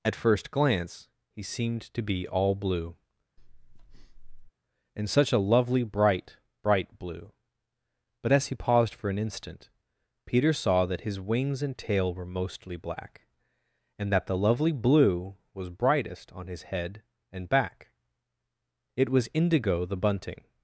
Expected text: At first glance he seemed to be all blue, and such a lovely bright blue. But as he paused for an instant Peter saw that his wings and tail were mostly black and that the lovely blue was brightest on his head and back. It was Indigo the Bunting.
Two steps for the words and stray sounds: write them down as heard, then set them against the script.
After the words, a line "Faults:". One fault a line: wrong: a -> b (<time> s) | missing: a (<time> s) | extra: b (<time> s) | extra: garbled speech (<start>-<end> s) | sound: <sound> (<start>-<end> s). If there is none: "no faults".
At first glance he seemed to be all blue, and such a lovely bright bright blue. But as he paused for an instant Peter saw that his wings and tail were mostly black and that the lovely blue was brightest on his head and back. It was Indigo the Bunting.
Faults:
sound: breath (3.4-4.5 s)
extra: bright (6.6 s)